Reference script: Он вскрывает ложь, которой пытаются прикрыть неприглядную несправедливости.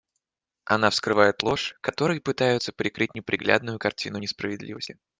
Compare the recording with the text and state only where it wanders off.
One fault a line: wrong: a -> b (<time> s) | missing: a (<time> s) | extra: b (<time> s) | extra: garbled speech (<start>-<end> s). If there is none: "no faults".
wrong: Он -> Она (0.7 s)
extra: картину (3.8 s)